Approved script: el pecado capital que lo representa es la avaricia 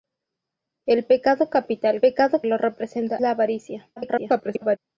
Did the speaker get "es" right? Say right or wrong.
wrong